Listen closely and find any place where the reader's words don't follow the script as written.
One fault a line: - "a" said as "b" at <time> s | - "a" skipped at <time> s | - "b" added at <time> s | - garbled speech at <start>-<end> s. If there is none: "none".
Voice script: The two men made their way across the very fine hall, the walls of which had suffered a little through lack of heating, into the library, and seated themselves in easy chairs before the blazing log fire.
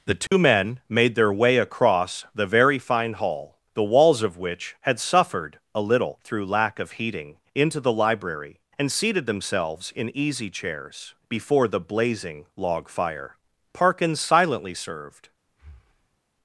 - "Parkins silently served" added at 13.7 s